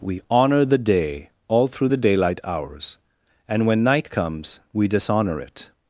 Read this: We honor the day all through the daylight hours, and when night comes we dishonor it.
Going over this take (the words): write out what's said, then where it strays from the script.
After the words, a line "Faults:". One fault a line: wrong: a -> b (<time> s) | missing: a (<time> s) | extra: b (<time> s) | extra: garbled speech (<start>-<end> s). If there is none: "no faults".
We honor the day all through the daylight hours, and when night comes we dishonor it.
Faults:
no faults